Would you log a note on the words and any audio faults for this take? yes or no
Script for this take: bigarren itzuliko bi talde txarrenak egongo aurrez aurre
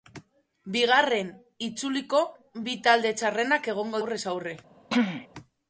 yes